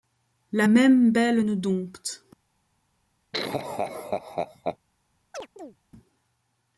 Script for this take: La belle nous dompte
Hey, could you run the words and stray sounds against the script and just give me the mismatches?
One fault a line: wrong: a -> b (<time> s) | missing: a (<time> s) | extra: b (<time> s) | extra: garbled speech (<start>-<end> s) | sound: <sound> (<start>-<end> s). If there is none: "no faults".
extra: même (0.6 s)
sound: laugh (3.3-4.8 s)
sound: chirp (5.3-5.8 s)